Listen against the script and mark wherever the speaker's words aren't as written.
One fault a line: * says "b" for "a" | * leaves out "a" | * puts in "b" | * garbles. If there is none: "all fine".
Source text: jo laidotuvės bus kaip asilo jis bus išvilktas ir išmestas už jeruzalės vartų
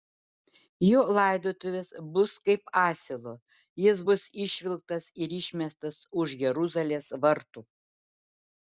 all fine